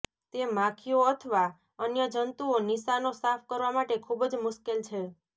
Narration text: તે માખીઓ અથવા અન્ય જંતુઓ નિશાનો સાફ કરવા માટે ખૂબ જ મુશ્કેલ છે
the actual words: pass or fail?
pass